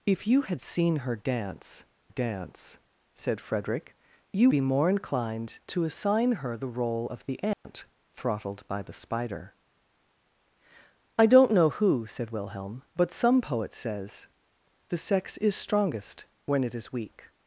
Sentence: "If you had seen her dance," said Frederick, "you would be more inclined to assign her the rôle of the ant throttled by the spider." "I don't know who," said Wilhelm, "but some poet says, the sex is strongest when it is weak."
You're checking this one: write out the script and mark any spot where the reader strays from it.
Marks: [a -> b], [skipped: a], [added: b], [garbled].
"If you had seen her dance," [added: dance] said Frederick, "you [skipped: would] be more inclined to assign her the rôle of the ant throttled by the spider." "I don't know who," said Wilhelm, "but some poet says, the sex is strongest when it is weak."